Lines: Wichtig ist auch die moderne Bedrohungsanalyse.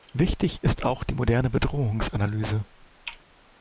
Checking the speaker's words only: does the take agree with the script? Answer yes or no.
yes